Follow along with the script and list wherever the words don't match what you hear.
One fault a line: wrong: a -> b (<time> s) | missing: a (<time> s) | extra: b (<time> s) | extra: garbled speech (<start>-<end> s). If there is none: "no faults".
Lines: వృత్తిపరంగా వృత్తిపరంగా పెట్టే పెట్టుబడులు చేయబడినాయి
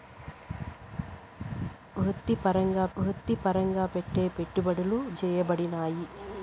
no faults